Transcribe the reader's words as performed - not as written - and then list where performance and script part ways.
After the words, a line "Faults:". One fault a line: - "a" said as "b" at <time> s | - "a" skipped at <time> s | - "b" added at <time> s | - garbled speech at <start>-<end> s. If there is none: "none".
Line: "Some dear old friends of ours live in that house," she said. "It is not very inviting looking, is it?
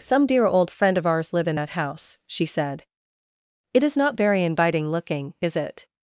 "Some dear old friend of ours live in that house," she said. "It is not very inviting looking, is it?
Faults:
- "friends" said as "friend" at 0.7 s